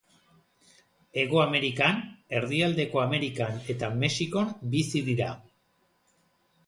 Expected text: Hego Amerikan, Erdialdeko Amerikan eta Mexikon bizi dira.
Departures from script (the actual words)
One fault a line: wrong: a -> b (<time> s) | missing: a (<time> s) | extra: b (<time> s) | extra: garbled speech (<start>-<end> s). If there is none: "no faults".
no faults